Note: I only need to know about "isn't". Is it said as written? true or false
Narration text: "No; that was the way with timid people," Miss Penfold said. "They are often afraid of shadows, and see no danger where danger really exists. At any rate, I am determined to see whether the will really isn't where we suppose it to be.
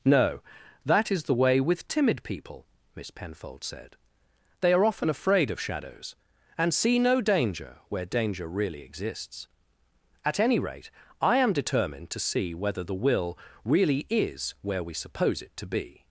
false